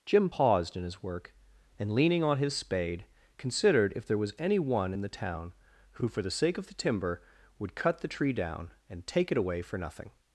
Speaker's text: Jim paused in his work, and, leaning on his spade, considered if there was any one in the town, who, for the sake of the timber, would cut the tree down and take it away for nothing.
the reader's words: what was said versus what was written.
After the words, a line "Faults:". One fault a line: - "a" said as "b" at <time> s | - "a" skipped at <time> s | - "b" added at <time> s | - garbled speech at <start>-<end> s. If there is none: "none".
Jim paused in his work, and, leaning on his spade, considered if there was any one in the town, who, for the sake of the timber, would cut the tree down and take it away for nothing.
Faults:
none